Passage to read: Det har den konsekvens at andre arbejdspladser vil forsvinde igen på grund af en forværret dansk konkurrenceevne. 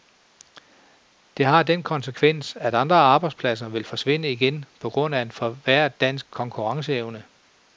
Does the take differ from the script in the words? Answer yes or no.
no